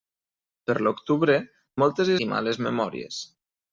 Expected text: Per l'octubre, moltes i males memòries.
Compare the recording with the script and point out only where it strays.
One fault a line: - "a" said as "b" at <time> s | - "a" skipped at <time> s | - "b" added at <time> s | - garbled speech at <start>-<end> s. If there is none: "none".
none